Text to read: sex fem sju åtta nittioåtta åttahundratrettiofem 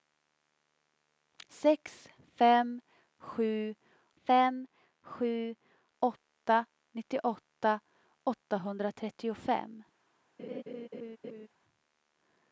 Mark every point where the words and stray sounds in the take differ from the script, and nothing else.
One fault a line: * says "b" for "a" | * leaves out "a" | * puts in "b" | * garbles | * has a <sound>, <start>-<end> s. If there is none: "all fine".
* puts in "fem sju"
* has a laugh, 10.4-11.5 s